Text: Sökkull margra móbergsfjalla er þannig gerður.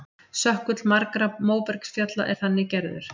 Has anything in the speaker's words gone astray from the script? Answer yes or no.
no